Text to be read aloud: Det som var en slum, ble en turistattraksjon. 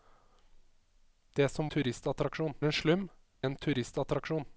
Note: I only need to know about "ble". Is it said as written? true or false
false